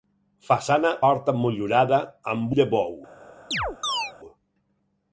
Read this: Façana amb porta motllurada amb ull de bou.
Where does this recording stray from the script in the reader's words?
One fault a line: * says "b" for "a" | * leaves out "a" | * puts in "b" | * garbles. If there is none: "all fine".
* leaves out "amb"
* leaves out "ull"